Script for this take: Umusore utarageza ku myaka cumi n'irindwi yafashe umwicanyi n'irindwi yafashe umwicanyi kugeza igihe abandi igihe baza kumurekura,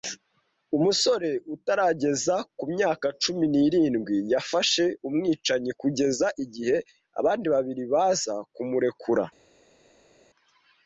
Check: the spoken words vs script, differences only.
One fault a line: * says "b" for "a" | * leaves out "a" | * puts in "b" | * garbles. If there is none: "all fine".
* leaves out "n'irindwi yafashe umwicanyi"
* says "babiri" for "igihe"